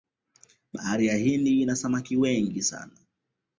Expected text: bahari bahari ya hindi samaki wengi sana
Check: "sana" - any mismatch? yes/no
no